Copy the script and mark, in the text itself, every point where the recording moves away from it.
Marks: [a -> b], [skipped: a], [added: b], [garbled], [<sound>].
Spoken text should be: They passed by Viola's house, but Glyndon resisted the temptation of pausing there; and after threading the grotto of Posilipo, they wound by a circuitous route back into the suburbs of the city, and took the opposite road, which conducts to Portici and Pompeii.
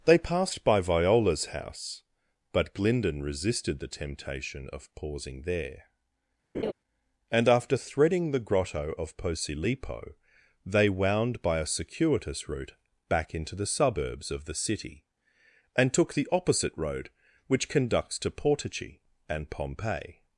They passed by Viola's house, but Glyndon resisted the temptation of pausing there; [laugh] and after threading the grotto of Posilipo, they wound by a circuitous route back into the suburbs of the city, and took the opposite road, which conducts to Portici and Pompeii.